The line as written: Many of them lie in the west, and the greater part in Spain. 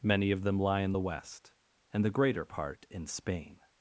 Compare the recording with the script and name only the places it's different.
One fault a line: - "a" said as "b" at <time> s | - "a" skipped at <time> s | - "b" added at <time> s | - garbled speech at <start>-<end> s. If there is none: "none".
none